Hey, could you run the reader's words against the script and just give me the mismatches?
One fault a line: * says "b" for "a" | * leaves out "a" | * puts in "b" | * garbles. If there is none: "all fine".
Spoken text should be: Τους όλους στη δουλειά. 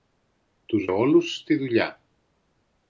all fine